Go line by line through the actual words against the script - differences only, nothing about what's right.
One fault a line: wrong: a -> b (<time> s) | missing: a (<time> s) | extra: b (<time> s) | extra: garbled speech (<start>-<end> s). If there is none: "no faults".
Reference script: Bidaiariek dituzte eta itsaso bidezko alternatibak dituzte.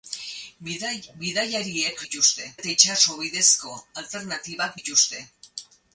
no faults